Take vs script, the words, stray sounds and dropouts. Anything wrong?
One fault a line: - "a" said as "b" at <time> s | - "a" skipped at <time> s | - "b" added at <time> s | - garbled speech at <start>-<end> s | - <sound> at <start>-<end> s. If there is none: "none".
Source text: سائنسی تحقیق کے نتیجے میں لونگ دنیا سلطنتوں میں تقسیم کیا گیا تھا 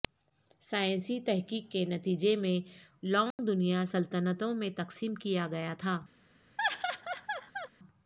- dropout at 3.3-3.4 s
- laugh at 6.6-7.7 s